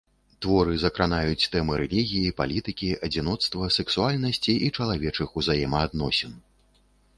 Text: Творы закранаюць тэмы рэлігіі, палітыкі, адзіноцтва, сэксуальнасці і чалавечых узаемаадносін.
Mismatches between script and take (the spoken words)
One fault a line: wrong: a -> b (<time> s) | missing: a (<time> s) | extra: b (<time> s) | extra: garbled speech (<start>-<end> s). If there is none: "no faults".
no faults